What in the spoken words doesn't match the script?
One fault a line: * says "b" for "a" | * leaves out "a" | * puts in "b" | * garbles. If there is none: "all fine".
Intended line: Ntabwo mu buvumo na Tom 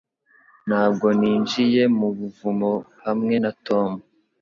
* puts in "ninjiye"
* puts in "hamwe"